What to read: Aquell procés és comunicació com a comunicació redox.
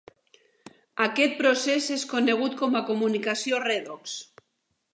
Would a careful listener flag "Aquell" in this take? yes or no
yes